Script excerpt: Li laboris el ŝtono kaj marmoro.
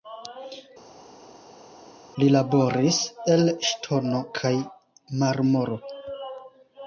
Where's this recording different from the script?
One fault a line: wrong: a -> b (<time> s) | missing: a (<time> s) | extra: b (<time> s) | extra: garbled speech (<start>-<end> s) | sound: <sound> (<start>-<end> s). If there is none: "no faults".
no faults